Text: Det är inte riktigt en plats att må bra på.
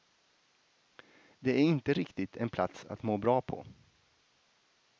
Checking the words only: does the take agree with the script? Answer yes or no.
yes